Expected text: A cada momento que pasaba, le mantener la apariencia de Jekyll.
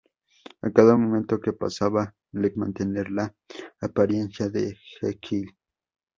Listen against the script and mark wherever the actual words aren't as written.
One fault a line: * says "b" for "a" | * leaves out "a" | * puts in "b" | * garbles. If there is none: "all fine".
all fine